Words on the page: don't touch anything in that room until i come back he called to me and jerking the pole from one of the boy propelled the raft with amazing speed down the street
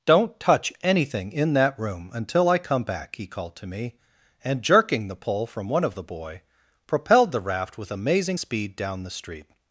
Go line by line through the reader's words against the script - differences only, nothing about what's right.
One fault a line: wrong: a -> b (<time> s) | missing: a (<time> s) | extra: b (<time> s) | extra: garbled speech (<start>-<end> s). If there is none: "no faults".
no faults